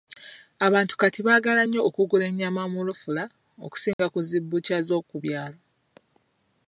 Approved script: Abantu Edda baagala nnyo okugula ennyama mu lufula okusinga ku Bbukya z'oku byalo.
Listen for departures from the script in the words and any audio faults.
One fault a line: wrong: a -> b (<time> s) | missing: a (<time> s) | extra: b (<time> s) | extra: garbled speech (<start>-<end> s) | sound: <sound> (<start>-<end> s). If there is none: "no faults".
wrong: Edda -> Kati (1.0 s)
sound: dropout (3.9-4.0 s)
extra: zi (4.3 s)